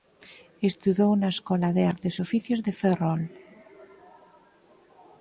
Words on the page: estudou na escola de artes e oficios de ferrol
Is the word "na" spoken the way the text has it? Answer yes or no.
yes